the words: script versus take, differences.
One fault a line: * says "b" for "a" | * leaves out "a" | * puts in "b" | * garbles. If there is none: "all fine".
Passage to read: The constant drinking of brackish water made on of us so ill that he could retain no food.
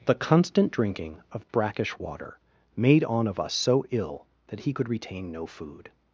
all fine